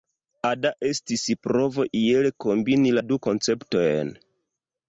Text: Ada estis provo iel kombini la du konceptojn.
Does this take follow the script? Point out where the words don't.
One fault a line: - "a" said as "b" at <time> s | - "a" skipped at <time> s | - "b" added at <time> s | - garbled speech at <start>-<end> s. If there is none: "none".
none